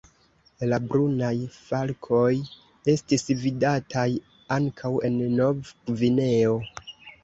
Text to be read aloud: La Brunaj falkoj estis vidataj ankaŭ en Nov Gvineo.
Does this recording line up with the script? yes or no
yes